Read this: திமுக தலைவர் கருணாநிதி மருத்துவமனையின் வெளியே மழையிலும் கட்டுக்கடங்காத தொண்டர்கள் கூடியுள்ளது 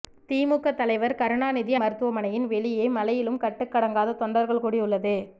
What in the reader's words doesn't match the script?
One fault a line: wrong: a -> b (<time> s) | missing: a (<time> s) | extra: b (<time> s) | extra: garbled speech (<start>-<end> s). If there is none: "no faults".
no faults